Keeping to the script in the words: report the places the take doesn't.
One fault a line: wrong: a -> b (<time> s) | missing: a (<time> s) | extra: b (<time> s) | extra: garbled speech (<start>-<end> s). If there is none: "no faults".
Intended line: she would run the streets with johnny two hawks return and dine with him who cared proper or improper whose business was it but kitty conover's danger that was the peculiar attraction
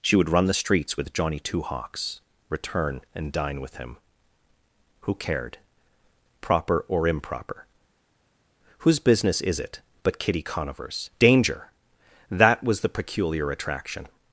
wrong: was -> is (9.4 s)